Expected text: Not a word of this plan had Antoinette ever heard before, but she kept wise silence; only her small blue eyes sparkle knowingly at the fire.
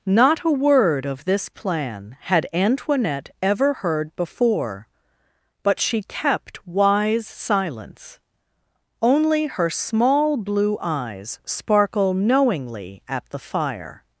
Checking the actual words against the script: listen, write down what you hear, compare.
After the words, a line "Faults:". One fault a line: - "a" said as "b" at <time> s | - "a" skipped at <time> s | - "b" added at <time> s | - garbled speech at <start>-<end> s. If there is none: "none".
Not a word of this plan had Antoinette ever heard before, but she kept wise silence; only her small blue eyes sparkle knowingly at the fire.
Faults:
none